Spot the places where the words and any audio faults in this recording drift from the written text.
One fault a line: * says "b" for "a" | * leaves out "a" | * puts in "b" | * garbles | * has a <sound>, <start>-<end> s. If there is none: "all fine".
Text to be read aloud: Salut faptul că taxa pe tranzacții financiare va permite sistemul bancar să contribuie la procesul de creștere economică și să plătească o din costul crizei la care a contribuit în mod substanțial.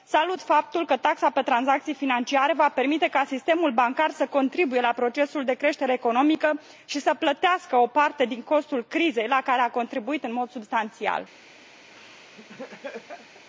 * puts in "ca"
* puts in "parte"
* has a laugh, 11.9-13.5 s